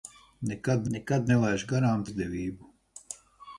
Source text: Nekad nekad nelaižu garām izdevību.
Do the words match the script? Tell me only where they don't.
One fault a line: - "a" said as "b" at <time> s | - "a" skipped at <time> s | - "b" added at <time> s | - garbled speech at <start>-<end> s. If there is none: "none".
none